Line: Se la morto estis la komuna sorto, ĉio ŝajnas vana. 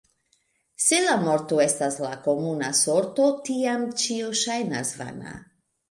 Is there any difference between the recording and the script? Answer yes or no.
yes